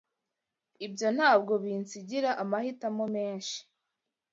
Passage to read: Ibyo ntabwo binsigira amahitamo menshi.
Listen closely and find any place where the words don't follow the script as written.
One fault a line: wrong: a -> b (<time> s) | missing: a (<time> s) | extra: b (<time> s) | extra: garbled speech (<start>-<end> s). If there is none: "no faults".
no faults